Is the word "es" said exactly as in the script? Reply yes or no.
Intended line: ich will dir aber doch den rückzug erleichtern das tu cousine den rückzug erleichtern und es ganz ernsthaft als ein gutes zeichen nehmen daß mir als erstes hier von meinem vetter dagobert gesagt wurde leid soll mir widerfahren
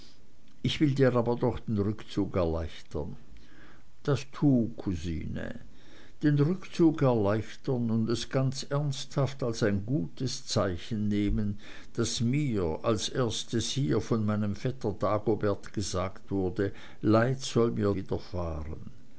yes